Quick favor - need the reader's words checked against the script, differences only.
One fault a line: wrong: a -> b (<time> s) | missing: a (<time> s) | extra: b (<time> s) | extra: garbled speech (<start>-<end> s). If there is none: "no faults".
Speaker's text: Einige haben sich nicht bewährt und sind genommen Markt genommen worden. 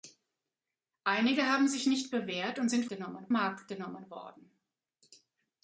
no faults